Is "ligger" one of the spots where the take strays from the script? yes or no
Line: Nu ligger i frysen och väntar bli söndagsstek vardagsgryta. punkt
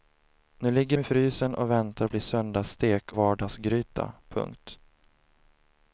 no